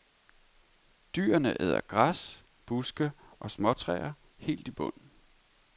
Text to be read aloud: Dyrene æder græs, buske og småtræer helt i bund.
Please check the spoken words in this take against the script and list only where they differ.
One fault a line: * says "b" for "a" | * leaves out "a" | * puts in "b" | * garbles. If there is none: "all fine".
all fine